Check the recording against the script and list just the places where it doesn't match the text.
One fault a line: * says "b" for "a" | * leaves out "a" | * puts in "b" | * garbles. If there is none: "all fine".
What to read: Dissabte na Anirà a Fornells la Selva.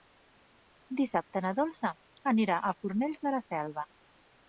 * puts in "Dolça"
* puts in "de"